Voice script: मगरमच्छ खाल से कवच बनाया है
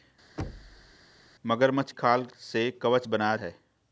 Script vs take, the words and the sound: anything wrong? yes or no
yes